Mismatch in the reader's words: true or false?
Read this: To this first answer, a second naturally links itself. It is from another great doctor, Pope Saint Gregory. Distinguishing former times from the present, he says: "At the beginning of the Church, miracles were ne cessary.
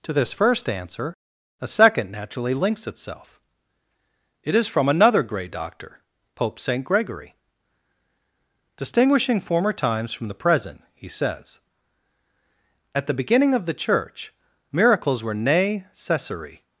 true